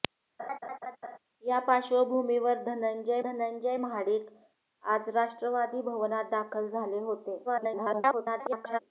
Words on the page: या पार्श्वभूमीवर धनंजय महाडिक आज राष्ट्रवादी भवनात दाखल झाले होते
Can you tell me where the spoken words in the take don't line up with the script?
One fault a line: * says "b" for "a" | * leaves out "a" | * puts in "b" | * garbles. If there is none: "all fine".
* puts in "धनंजय"
* garbles